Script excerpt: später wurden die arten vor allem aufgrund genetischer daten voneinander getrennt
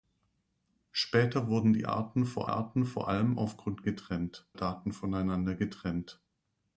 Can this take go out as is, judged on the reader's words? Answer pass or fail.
fail